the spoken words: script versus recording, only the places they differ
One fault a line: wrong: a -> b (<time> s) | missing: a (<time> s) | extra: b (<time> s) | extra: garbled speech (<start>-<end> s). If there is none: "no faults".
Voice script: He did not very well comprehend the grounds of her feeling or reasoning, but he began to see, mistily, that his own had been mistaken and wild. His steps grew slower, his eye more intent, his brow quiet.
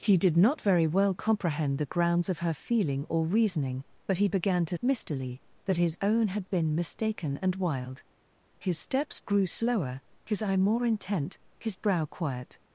missing: see (4.8 s)